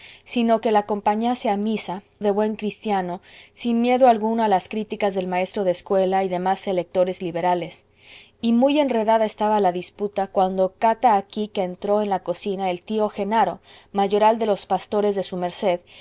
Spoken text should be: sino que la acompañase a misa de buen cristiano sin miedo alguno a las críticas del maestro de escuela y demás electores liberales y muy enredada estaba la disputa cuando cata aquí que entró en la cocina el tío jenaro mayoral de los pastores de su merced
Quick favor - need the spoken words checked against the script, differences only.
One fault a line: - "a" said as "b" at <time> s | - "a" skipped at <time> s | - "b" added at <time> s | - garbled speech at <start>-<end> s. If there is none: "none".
none